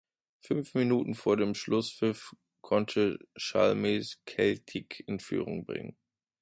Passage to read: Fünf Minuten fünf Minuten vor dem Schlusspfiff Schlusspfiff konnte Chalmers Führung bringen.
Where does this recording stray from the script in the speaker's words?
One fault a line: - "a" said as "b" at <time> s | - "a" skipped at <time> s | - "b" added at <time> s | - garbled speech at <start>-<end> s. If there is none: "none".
- "fünf Minuten" skipped at 1.1 s
- "Schlusspfiff" skipped at 2.4 s
- "Celtic in" added at 4.2 s